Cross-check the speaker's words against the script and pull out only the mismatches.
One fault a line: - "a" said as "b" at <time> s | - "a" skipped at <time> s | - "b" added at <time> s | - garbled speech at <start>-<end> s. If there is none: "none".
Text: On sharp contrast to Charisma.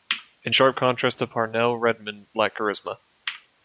- "On" said as "In" at 0.4 s
- "Parnell Redmond lacked" added at 1.3 s